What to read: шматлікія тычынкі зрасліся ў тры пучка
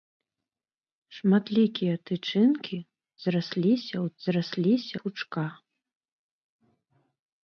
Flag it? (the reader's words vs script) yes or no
yes